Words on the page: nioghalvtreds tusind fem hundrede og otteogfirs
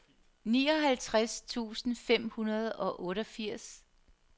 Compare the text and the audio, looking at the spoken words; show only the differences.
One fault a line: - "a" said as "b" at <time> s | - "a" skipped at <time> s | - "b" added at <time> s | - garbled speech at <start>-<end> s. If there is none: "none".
none